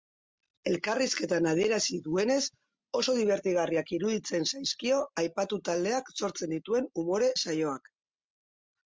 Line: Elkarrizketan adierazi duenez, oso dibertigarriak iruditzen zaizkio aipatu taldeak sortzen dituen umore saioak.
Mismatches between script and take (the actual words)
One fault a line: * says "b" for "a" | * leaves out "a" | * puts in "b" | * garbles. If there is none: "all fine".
all fine